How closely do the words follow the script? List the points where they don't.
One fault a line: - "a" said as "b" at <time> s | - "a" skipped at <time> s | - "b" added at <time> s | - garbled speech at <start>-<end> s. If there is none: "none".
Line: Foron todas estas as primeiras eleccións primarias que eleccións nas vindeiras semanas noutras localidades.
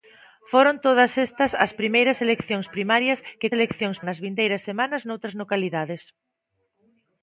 none